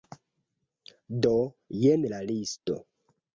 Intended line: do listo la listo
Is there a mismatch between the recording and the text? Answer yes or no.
yes